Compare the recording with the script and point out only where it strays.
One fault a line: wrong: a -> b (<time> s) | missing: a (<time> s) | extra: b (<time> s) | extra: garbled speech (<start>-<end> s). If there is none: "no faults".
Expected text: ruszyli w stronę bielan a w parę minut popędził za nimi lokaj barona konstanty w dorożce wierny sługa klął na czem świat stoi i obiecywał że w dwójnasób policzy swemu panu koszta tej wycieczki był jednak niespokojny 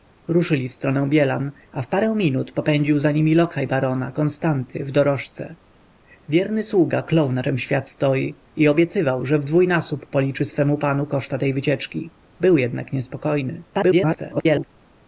extra: garbled speech (13.7-14.6 s)